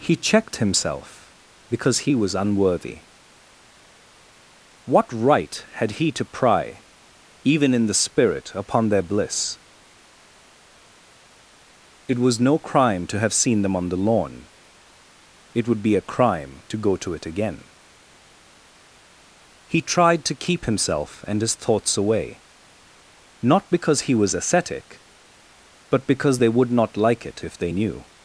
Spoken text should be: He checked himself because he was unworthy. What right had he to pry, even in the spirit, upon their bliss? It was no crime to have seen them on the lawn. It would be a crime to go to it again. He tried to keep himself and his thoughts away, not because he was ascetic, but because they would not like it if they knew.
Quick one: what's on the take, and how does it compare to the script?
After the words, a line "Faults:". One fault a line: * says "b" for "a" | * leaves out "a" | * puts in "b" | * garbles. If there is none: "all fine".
He checked himself because he was unworthy. What right had he to pry, even in the spirit, upon their bliss? It was no crime to have seen them on the lawn. It would be a crime to go to it again. He tried to keep himself and his thoughts away, not because he was ascetic, but because they would not like it if they knew.
Faults:
all fine